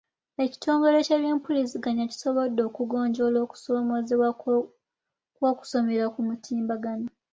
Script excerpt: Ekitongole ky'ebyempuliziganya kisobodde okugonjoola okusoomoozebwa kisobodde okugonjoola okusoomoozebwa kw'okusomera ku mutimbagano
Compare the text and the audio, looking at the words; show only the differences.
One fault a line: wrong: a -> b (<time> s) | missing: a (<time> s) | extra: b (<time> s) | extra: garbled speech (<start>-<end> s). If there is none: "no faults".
missing: kisobodde okugonjoola okusoomoozebwa (4.3 s)